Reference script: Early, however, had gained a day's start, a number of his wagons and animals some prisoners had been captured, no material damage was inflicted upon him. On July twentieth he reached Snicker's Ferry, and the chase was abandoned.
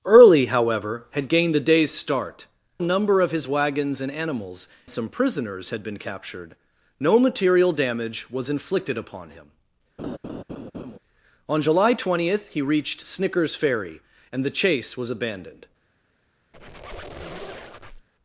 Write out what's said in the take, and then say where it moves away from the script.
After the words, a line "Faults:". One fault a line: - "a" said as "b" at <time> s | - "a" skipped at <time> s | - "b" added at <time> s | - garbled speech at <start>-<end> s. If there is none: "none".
Early, however, had gained a day's start, a number of his wagons and animals some prisoners had been captured, no material damage was inflicted upon him. On July twentieth he reached Snicker's Ferry, and the chase was abandoned.
Faults:
none